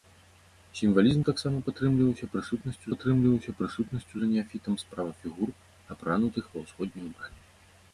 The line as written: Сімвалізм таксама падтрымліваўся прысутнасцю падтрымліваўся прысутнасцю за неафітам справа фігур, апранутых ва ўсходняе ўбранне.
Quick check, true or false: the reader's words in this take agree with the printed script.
true